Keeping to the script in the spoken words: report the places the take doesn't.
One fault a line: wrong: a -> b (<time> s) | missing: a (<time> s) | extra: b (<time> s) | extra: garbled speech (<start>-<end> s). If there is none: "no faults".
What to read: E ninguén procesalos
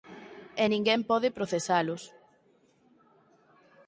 extra: pode (1.1 s)